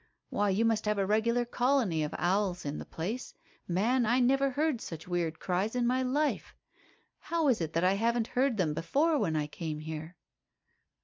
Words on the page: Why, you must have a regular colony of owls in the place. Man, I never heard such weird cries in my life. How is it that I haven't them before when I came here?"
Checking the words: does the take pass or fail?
fail